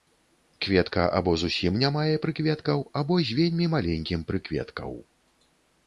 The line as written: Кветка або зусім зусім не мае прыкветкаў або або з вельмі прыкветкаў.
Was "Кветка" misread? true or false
false